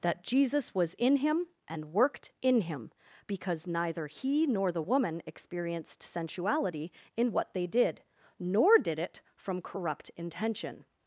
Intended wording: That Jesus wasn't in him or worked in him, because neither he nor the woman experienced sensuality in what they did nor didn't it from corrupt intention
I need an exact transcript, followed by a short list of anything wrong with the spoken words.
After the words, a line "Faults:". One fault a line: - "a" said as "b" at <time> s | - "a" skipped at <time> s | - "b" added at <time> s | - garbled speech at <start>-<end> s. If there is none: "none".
That Jesus was in him and worked in him, because neither he nor the woman experienced sensuality in what they did nor did it from corrupt intention
Faults:
- "wasn't" said as "was" at 0.8 s
- "or" said as "and" at 1.7 s
- "didn't" said as "did" at 8.8 s